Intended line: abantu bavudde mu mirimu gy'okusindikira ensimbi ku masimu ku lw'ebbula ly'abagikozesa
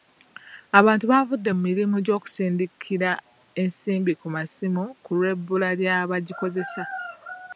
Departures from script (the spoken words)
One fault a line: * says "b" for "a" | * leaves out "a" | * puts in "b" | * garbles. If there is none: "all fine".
all fine